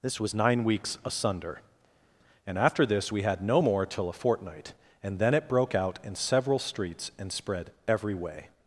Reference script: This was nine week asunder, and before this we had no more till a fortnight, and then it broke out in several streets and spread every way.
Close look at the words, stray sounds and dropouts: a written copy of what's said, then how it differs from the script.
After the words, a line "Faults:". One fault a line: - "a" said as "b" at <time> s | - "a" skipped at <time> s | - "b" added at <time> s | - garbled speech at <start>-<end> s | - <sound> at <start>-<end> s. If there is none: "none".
This was nine weeks asunder, and after this we had no more till a fortnight, and then it broke out in several streets and spread every way.
Faults:
- "week" said as "weeks" at 0.6 s
- "before" said as "after" at 2.6 s